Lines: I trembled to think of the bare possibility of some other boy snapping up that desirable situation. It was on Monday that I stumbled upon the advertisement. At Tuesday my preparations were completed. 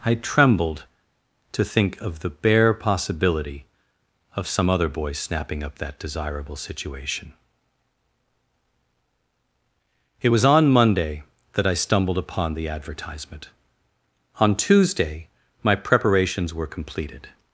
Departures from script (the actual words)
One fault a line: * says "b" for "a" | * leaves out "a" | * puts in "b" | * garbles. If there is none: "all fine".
* says "On" for "At"